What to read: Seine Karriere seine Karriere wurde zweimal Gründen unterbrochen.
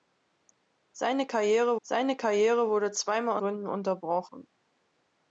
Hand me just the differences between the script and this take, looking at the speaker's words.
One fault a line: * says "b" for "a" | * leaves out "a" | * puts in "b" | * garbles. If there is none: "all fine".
all fine